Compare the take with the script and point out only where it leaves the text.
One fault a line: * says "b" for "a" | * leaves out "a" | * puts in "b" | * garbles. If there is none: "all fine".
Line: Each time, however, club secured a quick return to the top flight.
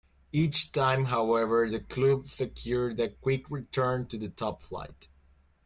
* puts in "the"